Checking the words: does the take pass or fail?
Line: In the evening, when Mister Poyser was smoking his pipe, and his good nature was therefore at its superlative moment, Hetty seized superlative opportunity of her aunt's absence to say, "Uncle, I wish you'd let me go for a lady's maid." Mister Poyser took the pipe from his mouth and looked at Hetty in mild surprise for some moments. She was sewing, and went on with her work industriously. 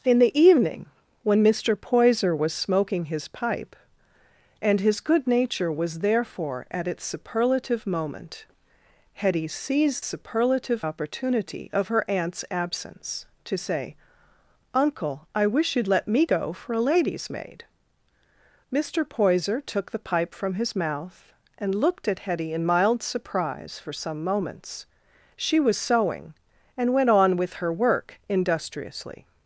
pass